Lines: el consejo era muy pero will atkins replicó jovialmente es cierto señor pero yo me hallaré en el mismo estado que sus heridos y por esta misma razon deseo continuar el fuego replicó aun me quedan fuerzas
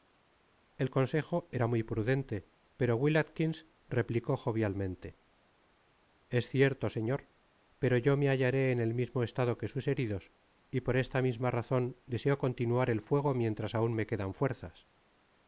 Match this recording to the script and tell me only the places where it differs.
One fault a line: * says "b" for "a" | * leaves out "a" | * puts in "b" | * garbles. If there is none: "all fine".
* puts in "prudente"
* says "mientras" for "replicó"